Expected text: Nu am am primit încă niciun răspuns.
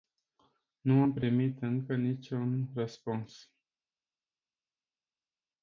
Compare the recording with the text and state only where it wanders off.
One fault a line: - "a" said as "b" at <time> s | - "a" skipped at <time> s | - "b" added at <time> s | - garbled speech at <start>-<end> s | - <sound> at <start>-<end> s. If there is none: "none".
- "am" skipped at 1.2 s